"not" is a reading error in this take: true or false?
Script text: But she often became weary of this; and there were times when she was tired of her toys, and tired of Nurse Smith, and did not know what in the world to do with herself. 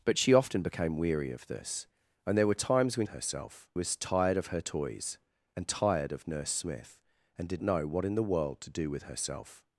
true